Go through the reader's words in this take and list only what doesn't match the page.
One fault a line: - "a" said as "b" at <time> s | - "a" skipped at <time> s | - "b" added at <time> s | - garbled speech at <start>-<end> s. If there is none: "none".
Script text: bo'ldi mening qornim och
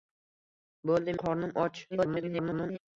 - "mening" skipped at 1.1 s
- garbled speech at 1.9-2.8 s